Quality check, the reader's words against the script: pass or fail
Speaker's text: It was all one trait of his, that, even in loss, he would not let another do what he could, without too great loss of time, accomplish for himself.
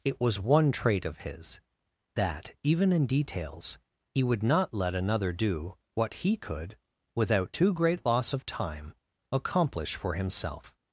fail